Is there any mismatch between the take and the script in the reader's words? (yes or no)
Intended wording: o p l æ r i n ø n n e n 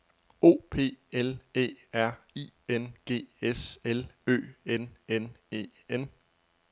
yes